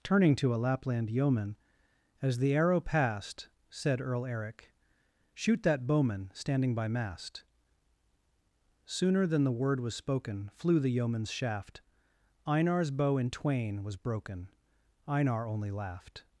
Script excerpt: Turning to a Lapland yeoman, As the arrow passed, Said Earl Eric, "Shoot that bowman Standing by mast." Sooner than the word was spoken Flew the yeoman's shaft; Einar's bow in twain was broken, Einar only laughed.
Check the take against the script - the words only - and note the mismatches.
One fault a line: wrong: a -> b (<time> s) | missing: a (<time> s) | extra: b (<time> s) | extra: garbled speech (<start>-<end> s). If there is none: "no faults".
no faults